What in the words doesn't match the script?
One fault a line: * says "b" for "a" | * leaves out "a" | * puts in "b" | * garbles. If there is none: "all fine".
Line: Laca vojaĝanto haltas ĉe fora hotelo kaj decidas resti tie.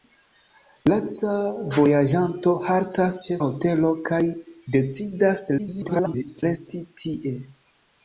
* leaves out "fora"
* garbles